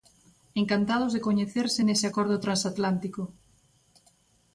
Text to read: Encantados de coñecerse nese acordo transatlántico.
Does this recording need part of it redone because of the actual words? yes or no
no